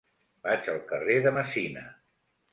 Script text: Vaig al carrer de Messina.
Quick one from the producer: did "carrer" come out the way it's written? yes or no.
yes